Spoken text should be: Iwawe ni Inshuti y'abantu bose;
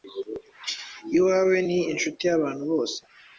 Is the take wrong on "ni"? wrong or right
right